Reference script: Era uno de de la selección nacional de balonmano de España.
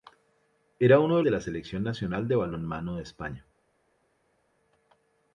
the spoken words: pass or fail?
pass